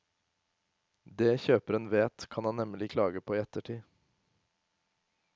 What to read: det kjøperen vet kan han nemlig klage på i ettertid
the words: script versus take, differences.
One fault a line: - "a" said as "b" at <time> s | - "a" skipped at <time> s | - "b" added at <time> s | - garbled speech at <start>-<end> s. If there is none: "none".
none